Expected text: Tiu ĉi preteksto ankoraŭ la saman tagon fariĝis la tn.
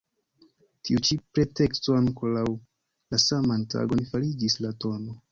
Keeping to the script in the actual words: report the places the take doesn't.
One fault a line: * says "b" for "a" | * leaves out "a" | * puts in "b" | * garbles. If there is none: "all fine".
all fine